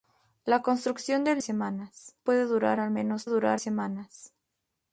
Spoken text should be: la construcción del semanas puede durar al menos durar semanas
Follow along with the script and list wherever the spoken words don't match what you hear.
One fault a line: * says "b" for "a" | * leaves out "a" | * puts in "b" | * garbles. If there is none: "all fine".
all fine